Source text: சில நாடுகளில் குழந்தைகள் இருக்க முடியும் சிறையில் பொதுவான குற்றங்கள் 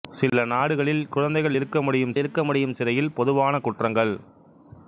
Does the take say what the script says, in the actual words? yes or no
no